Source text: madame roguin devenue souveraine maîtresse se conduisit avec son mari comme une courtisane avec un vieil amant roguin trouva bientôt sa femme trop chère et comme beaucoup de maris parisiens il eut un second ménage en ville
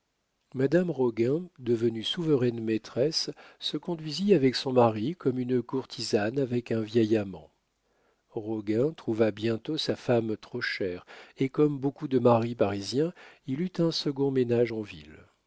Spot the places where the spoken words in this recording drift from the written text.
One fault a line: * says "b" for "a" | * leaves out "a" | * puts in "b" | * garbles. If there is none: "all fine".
all fine